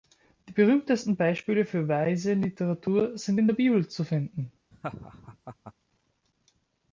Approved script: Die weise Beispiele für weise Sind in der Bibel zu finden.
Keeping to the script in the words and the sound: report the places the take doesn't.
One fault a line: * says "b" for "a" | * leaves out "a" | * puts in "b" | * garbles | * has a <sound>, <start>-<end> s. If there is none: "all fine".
* says "berühmtesten" for "weise"
* puts in "Literatur"
* has a laugh, 4.7-5.7 s